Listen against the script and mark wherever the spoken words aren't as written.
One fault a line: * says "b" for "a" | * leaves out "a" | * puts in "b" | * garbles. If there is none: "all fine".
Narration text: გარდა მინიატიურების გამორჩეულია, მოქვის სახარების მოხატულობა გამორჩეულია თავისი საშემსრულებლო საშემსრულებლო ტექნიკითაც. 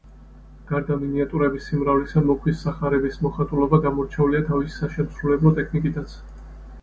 * says "სიმრავლისა" for "გამორჩეულია"
* leaves out "საშემსრულებლო"